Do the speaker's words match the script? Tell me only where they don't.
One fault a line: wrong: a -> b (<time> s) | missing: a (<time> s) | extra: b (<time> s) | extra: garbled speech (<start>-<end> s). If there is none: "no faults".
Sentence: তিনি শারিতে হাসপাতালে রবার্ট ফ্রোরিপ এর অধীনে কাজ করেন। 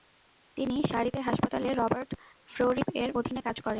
no faults